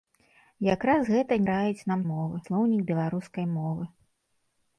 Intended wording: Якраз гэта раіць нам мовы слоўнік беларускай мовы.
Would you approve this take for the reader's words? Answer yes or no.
yes